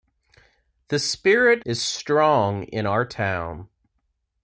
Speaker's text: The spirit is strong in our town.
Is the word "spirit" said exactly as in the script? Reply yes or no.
yes